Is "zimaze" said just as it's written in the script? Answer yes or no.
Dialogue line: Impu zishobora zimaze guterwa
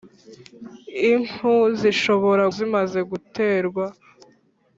yes